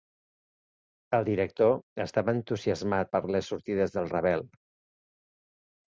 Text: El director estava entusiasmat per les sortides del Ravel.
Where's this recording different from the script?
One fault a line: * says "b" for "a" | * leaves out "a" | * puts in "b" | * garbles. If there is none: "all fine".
all fine